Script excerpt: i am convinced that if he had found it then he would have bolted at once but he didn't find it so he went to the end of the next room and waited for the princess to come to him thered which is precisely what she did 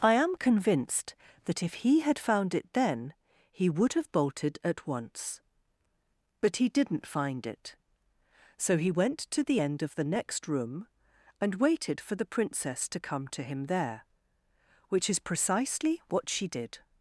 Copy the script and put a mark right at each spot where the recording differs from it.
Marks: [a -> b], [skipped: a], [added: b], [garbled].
i am convinced that if he had found it then he would have bolted at once but he didn't find it so he went to the end of the next room and waited for the princess to come to him [thered -> there] which is precisely what she did